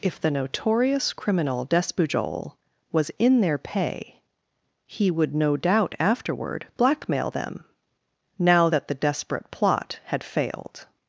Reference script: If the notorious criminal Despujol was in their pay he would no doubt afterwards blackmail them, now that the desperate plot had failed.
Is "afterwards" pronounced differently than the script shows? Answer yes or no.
yes